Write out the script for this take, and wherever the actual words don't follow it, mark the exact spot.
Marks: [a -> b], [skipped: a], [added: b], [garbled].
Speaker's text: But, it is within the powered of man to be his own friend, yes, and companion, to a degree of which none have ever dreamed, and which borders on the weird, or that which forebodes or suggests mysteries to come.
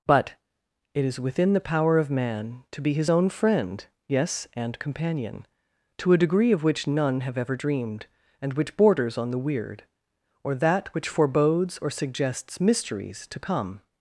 But, it is within the [powered -> power] of man to be his own friend, yes, and companion, to a degree of which none have ever dreamed, and which borders on the weird, or that which forebodes or suggests mysteries to come.